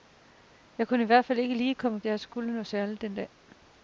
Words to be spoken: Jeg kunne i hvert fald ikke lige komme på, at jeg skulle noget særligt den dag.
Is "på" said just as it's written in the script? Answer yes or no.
no